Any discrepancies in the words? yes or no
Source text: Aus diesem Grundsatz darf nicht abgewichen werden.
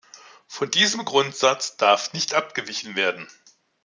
yes